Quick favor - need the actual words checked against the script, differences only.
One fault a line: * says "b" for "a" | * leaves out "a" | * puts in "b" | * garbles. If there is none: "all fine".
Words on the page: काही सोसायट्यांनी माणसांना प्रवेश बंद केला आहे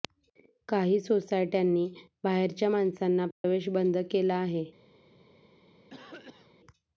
* puts in "बाहेरच्या"